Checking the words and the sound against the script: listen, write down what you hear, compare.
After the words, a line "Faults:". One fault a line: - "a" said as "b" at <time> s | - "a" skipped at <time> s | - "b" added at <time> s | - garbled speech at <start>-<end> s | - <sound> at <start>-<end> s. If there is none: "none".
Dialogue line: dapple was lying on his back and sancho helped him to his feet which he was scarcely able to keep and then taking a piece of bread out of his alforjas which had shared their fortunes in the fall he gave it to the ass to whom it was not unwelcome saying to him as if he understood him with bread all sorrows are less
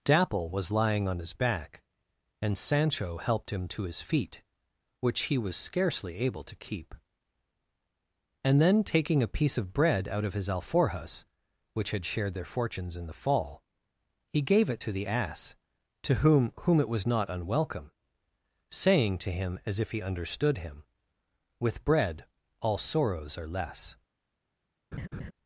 dapple was lying on his back and sancho helped him to his feet which he was scarcely able to keep and then taking a piece of bread out of his alforjas which had shared their fortunes in the fall he gave it to the ass to whom whom it was not unwelcome saying to him as if he understood him with bread all sorrows are less
Faults:
- "whom" added at 16.6 s
- laugh at 24.9-25.3 s